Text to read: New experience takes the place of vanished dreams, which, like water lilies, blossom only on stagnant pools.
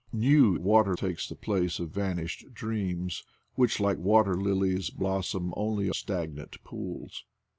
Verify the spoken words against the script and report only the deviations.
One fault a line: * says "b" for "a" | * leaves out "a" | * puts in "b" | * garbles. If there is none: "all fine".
* says "water" for "experience"
* leaves out "on"